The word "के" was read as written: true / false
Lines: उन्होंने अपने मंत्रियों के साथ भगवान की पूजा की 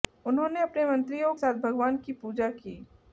false